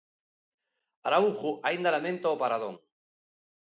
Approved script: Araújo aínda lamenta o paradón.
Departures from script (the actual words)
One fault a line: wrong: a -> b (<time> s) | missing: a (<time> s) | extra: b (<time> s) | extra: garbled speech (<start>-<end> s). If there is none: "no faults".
no faults